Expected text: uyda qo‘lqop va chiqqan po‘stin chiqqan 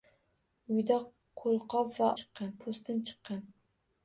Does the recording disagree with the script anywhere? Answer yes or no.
no